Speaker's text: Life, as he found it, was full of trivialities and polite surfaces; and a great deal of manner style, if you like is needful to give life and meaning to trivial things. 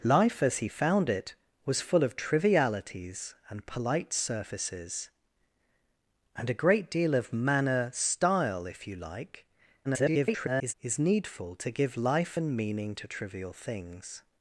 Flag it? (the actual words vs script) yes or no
yes